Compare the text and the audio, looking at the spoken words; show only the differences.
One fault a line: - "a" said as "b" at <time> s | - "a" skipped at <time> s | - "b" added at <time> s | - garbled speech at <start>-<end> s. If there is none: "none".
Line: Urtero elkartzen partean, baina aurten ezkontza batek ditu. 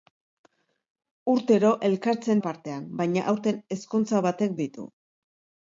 none